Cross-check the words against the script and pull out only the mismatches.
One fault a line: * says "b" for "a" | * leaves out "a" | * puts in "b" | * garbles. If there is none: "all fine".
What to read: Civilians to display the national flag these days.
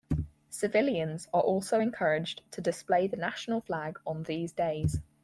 * puts in "are also encouraged"
* puts in "on"